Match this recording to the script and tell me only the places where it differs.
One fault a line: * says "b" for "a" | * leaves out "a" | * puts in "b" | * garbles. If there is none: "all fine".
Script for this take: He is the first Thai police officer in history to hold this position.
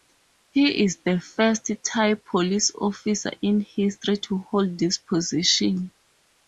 all fine